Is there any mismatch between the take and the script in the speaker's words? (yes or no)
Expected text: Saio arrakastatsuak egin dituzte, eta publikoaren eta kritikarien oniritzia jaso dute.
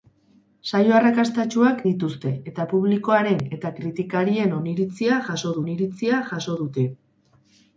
yes